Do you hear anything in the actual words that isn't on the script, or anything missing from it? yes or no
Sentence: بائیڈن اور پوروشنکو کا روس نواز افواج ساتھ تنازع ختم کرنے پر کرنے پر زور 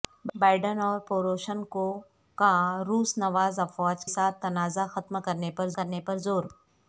no